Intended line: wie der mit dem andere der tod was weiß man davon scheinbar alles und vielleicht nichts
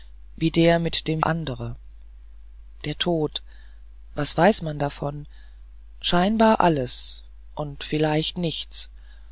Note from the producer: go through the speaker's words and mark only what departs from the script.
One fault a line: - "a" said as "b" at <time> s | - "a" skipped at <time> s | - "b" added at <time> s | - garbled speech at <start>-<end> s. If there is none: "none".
none